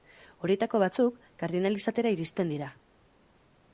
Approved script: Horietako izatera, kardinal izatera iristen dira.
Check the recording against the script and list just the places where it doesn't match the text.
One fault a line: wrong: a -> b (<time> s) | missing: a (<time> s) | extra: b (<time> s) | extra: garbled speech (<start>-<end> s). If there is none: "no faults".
wrong: izatera -> batzuk (0.8 s)